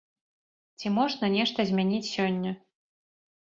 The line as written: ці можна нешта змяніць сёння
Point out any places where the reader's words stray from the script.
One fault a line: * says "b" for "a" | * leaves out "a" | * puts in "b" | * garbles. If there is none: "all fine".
all fine